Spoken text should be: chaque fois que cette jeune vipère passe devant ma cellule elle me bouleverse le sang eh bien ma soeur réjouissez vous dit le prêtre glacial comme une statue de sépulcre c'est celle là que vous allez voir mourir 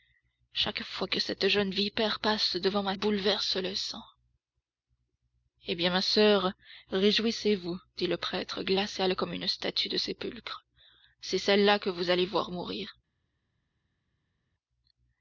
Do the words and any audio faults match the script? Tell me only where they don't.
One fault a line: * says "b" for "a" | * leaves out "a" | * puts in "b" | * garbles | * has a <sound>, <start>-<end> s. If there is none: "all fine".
* leaves out "cellule elle me"